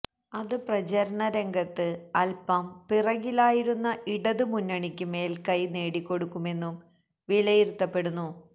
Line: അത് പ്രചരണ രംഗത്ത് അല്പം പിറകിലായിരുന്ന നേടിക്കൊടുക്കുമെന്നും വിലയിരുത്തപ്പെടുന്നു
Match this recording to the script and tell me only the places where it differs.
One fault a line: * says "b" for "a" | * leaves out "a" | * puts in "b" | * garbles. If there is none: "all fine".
* puts in "ഇടത് മുന്നണിക്ക് മേല്ക്കൈ"